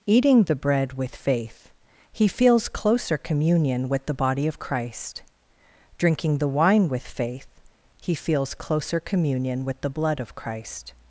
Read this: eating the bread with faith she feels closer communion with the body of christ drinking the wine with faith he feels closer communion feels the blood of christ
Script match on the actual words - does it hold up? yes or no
no